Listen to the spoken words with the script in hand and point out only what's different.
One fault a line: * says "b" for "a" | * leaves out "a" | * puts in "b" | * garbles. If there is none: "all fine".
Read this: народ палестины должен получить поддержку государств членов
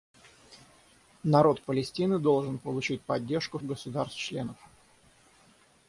all fine